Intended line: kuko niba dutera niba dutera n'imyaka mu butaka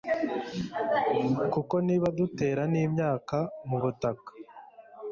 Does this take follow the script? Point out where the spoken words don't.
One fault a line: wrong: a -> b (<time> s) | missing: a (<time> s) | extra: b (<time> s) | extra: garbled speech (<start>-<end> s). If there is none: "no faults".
missing: niba dutera (2.6 s)